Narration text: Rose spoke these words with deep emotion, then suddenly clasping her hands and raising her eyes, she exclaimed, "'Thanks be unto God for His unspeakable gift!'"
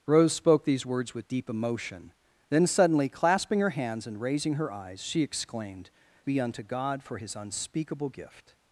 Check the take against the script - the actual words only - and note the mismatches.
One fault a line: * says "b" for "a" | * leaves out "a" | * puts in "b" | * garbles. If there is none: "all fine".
* leaves out "Thanks"